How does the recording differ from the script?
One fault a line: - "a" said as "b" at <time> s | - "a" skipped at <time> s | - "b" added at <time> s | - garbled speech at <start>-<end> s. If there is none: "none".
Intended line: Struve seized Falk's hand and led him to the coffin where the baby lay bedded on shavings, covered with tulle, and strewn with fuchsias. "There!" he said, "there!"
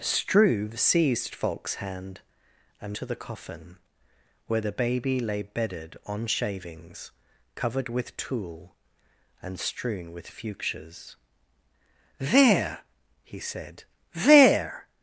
- "led him" skipped at 3.0 s